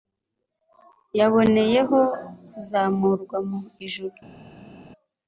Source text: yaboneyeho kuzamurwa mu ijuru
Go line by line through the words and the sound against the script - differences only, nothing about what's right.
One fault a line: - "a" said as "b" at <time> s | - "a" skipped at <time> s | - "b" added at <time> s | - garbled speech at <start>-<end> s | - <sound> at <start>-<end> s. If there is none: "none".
none